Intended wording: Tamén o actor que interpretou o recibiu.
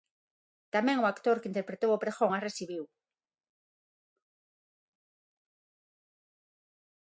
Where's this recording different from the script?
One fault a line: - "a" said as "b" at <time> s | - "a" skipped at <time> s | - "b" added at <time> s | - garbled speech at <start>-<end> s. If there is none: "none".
- "pregón as" added at 2.0 s